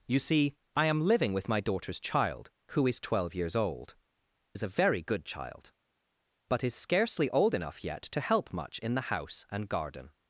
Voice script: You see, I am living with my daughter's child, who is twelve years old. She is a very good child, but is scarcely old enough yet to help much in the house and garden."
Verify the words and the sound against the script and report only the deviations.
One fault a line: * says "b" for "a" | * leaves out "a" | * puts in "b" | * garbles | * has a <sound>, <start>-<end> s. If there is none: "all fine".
* leaves out "She"